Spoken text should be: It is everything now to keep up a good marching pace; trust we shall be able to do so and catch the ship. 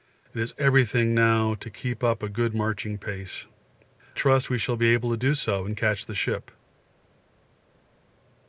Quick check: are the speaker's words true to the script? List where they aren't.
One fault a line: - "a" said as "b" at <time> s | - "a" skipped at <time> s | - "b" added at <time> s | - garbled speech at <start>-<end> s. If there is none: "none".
none